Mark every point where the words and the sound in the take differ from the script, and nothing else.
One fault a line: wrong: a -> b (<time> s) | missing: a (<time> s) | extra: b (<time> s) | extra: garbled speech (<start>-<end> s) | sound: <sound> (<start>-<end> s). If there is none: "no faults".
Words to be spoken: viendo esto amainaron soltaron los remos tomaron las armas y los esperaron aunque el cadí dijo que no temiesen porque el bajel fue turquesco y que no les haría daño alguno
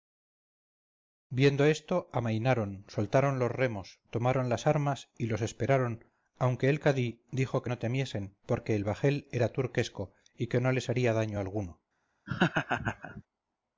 wrong: fue -> era (9.3 s)
sound: laugh (12.3-13.2 s)